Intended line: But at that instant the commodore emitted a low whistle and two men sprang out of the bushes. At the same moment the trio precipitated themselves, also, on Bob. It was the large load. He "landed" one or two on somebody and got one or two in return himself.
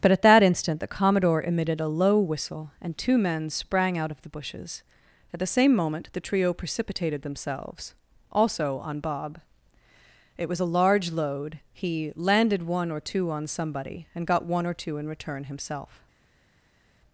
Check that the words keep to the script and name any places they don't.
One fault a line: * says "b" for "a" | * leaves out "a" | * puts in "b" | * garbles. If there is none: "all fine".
* says "a" for "the"